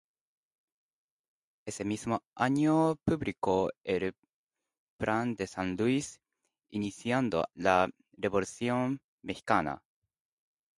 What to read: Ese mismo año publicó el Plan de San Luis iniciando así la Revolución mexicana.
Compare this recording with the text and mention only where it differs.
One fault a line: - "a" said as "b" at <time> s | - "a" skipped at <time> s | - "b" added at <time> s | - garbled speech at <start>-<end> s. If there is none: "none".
- "así" skipped at 7.5 s